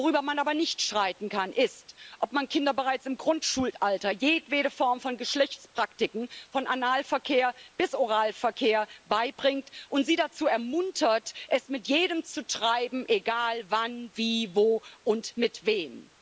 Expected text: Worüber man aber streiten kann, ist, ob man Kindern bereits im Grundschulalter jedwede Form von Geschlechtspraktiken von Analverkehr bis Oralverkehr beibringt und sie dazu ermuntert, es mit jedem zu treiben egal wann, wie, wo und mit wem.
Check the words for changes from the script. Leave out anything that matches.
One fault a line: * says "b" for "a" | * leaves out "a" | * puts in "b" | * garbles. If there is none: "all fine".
* puts in "nicht"